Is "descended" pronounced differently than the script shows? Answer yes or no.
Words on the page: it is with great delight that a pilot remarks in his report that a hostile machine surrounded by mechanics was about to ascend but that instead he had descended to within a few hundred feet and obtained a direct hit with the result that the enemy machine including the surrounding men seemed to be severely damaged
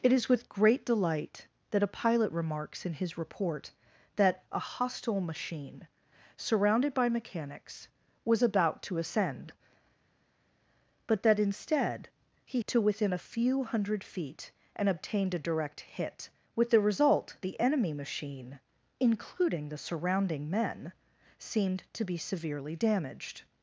yes